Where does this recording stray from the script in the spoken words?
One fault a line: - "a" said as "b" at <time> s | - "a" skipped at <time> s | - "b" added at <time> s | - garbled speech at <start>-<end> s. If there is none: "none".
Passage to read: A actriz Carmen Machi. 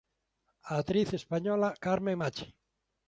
- "española" added at 1.1 s